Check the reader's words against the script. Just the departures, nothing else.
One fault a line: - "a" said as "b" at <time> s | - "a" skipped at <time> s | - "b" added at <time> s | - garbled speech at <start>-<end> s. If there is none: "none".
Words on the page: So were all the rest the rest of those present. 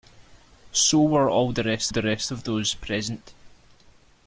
none